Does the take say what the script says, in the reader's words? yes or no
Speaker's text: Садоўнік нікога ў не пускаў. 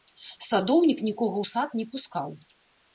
no